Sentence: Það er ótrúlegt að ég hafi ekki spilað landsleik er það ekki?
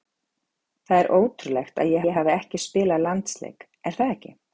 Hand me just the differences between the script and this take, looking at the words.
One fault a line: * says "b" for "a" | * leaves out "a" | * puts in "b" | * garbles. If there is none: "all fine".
* puts in "ég"